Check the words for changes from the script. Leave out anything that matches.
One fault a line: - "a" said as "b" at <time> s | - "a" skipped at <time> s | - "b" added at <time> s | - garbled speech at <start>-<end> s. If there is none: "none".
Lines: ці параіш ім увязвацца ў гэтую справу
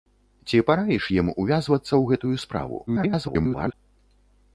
- garbled speech at 2.9-3.7 s